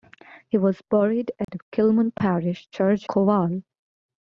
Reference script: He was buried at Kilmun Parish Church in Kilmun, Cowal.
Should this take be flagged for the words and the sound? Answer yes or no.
yes